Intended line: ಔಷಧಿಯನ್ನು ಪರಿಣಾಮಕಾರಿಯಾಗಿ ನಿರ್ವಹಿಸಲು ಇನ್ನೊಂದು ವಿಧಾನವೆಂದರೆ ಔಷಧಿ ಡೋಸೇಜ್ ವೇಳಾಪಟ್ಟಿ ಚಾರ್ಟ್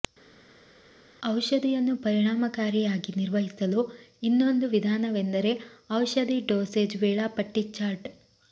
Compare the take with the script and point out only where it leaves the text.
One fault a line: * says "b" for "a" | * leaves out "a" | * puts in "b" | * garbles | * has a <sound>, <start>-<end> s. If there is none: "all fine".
all fine